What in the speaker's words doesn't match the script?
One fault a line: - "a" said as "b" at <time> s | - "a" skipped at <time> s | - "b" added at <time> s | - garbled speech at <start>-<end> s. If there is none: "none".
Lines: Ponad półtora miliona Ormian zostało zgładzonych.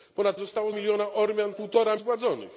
- "półtora" said as "zostało" at 0.4 s
- "zostało" said as "półtora" at 1.5 s